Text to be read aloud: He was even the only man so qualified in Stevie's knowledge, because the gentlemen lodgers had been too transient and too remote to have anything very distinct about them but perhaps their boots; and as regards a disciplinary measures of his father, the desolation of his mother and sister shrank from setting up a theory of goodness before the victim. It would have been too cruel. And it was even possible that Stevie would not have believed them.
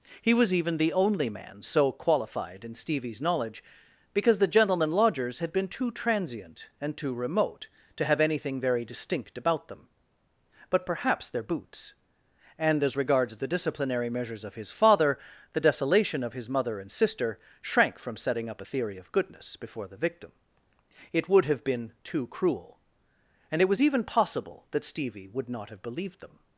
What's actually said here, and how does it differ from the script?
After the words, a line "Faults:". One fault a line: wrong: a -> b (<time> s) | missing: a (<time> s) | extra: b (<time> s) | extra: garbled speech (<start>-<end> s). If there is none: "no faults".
He was even the only man so qualified in Stevie's knowledge, because the gentlemen lodgers had been too transient and too remote to have anything very distinct about them but perhaps their boots; and as regards the disciplinary measures of his father, the desolation of his mother and sister shrank from setting up a theory of goodness before the victim. It would have been too cruel. And it was even possible that Stevie would not have believed them.
Faults:
wrong: a -> the (13.3 s)